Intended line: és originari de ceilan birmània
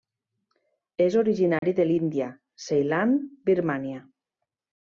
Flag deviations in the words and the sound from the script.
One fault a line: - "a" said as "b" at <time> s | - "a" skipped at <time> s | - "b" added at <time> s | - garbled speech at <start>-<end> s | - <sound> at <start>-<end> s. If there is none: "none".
- dropout at 1.6-1.6 s
- "l'índia" added at 1.9 s